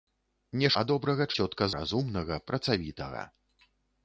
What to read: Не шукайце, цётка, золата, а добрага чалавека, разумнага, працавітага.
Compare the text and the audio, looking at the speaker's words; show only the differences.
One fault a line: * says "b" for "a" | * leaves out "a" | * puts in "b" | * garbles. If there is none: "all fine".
* leaves out "шукайце цётка золата"
* says "цётка" for "чалавека"